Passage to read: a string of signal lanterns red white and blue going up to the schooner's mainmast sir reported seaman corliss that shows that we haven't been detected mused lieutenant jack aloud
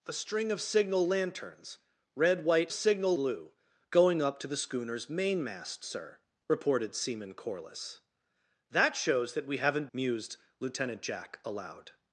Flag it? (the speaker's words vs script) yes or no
yes